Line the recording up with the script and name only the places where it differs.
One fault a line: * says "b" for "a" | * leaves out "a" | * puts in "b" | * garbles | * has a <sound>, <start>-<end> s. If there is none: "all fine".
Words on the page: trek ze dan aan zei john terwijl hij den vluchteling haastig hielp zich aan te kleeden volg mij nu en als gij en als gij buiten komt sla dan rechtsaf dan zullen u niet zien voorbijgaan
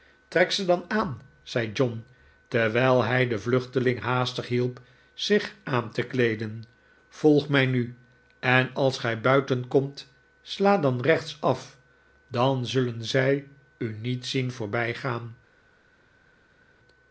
* leaves out "en als gij"
* puts in "zij"